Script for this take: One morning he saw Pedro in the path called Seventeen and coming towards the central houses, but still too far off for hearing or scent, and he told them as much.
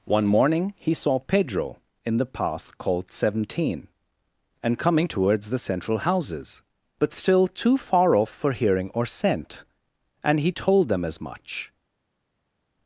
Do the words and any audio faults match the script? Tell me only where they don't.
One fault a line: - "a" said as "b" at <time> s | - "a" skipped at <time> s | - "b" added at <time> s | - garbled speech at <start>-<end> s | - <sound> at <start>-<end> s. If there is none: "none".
none